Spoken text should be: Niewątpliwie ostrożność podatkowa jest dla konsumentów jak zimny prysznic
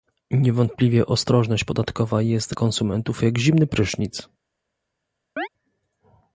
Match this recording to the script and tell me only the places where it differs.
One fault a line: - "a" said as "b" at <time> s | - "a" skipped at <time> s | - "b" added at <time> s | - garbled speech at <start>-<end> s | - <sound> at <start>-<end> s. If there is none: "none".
- "dla" skipped at 2.5 s
- chirp at 5.4-5.5 s